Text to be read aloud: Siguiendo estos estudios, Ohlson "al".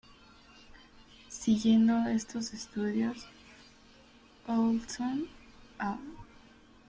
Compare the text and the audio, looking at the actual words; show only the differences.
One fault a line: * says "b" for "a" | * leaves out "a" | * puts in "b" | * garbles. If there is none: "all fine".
all fine